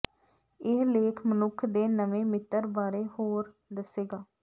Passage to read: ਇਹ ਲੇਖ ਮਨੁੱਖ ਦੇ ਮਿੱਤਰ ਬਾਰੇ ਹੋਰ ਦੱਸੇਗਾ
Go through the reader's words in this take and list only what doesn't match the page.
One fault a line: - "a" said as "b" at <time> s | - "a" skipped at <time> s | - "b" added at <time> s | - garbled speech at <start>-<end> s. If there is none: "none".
- "ਨਵੇਂ" added at 1.9 s